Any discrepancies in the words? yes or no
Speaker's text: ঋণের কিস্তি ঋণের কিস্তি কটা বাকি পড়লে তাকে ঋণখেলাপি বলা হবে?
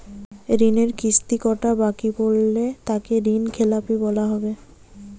yes